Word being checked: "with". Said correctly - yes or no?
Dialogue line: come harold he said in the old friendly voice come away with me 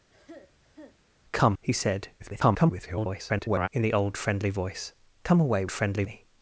no